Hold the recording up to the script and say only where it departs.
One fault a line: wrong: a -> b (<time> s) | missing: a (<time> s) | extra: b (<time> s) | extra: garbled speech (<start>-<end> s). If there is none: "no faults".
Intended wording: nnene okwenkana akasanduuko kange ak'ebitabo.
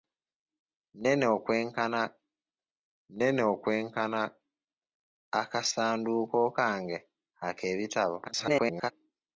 extra: nnene okwenkana (3.1 s)
extra: garbled speech (8.3-8.9 s)